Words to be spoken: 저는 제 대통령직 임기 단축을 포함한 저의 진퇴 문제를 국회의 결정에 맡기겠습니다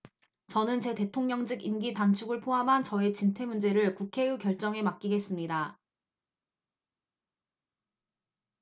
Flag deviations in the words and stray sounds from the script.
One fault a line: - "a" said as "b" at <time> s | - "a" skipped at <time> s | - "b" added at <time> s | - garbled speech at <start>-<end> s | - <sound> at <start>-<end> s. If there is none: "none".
none